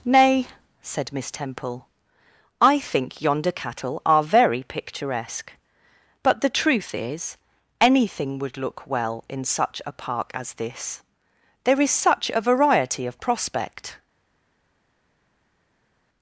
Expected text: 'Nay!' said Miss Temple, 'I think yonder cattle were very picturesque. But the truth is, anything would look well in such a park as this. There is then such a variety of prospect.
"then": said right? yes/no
no